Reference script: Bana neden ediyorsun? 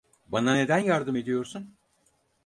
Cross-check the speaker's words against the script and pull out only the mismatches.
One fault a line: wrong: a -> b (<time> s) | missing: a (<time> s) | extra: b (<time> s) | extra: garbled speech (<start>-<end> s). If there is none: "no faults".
extra: yardım (0.8 s)